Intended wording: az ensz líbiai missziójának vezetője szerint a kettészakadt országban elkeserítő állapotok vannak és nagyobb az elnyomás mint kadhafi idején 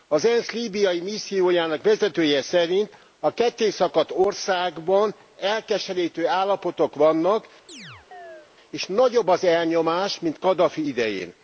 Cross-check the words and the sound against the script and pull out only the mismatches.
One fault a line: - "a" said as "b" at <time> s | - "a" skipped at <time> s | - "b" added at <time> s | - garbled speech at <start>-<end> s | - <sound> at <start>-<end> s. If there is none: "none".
- chirp at 7.7-8.5 s